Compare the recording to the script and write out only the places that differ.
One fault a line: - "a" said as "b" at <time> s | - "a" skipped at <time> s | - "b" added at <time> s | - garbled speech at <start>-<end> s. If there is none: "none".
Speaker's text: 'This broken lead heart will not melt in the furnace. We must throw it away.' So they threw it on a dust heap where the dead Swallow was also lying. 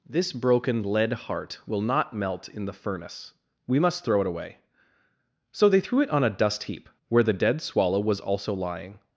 none